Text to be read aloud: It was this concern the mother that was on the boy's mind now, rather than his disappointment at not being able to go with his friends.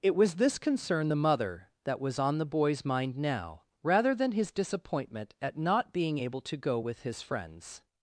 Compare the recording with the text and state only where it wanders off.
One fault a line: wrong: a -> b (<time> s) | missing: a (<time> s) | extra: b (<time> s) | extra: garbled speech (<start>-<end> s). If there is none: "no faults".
no faults